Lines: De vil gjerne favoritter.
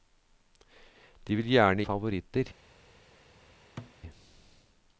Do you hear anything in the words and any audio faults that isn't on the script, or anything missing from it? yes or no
yes